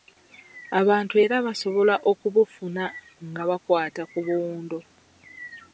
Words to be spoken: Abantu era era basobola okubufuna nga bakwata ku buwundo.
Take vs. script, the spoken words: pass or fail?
fail